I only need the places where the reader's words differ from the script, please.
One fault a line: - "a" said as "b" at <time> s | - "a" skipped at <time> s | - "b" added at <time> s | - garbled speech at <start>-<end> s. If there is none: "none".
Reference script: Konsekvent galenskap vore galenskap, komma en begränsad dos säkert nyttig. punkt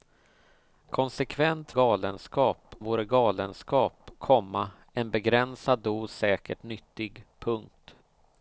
none